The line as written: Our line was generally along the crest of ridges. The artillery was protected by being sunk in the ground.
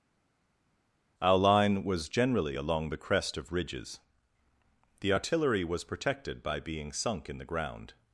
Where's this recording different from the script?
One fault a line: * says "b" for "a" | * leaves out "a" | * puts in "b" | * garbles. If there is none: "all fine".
all fine